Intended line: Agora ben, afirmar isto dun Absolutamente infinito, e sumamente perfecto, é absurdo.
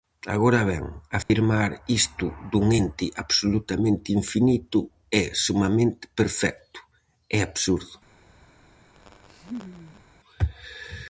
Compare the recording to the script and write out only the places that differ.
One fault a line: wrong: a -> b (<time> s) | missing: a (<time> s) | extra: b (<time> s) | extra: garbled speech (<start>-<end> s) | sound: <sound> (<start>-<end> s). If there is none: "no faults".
sound: dropout (1.2-1.3 s)
extra: Ente (2.8 s)
sound: laugh (9.0-10.0 s)